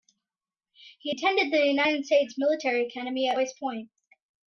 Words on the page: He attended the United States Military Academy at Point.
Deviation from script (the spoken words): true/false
true